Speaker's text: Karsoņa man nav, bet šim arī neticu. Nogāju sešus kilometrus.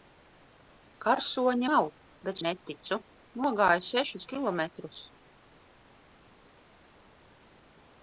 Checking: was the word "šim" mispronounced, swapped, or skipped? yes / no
yes